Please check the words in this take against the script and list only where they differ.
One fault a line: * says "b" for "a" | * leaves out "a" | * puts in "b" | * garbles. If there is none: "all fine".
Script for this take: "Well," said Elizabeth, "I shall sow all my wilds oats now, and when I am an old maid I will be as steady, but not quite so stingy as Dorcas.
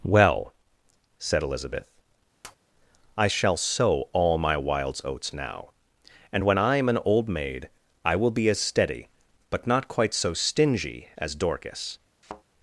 all fine